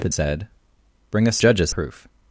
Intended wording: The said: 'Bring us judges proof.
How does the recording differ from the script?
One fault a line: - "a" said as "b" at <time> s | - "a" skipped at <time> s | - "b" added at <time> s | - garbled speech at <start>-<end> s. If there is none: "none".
none